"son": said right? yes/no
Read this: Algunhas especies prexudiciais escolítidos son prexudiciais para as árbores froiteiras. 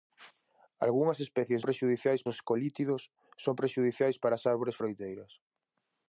yes